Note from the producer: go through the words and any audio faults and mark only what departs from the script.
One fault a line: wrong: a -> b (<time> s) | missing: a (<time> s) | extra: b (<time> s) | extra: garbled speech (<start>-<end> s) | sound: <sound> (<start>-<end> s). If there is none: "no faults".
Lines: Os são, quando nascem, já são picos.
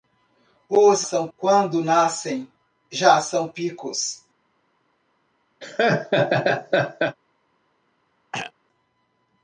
sound: laugh (5.6-7.2 s)
sound: throat clearing (8.3-8.5 s)